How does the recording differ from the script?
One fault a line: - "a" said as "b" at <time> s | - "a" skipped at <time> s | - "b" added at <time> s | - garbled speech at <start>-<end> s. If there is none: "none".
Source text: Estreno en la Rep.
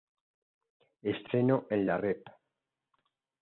none